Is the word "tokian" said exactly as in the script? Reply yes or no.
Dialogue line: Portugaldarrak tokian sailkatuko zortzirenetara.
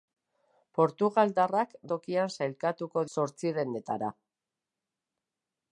yes